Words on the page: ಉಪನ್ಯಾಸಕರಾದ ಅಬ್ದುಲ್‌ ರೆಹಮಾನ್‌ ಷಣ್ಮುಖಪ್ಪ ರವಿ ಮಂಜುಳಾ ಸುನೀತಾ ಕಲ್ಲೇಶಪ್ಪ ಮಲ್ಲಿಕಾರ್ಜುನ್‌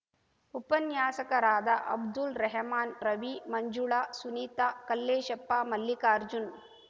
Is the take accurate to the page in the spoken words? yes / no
no